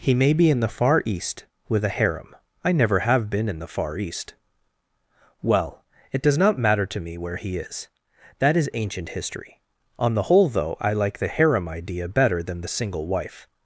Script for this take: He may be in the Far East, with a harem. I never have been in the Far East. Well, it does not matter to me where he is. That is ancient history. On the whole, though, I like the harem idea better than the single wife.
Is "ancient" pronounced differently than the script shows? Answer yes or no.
no